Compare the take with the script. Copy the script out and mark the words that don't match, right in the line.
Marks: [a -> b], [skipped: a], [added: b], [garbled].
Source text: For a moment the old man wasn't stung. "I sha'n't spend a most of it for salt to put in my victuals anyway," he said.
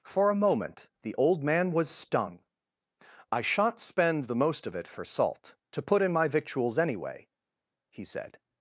For a moment the old man [wasn't -> was] stung. "I sha'n't spend [a -> the] most of it for salt to put in my victuals anyway," he said.